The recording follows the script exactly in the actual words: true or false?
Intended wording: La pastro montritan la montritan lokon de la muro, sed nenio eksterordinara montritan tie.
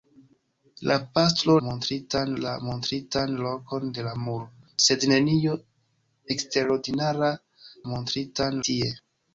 true